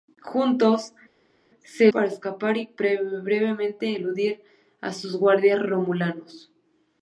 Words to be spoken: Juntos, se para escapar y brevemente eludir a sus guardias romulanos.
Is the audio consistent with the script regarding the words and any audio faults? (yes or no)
yes